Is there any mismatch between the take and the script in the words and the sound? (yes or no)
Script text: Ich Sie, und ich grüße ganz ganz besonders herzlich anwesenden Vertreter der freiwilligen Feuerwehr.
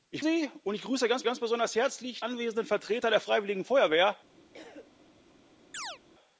yes